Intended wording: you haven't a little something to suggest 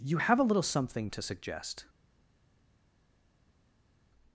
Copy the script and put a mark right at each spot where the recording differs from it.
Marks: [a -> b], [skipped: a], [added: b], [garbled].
you [haven't -> have] a little something to suggest